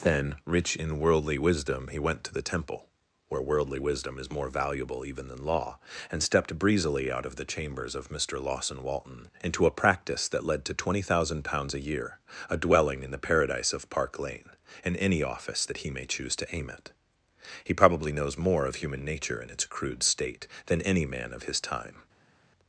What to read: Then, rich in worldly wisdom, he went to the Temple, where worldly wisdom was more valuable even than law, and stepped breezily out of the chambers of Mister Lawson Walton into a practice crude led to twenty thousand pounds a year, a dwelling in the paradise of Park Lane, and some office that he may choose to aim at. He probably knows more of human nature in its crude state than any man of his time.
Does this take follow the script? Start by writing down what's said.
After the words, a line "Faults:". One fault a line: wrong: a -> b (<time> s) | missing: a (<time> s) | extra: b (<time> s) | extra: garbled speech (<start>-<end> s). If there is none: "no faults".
Then, rich in worldly wisdom, he went to the Temple, where worldly wisdom is more valuable even than law, and stepped breezily out of the chambers of Mister Lawson Walton into a practice that led to twenty thousand pounds a year, a dwelling in the paradise of Park Lane, and any office that he may choose to aim at. He probably knows more of human nature in its crude state than any man of his time.
Faults:
wrong: was -> is (4.2 s)
wrong: crude -> that (10.3 s)
wrong: some -> any (15.0 s)